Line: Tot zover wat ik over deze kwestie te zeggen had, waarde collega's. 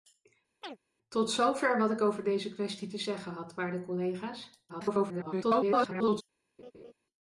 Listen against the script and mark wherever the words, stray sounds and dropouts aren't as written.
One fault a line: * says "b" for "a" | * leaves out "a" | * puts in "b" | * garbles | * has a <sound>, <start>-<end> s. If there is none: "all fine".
* has a chirp, 0.6-0.8 s
* garbles
* has a laugh, 6.6-6.9 s